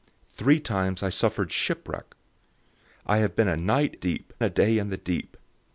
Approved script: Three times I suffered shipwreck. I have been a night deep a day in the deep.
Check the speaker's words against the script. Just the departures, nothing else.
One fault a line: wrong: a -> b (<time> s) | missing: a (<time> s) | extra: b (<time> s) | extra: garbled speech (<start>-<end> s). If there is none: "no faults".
no faults